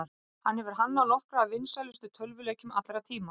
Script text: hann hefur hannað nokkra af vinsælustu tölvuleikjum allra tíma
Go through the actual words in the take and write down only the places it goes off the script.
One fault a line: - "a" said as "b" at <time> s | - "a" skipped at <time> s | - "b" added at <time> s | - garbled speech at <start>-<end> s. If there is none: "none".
none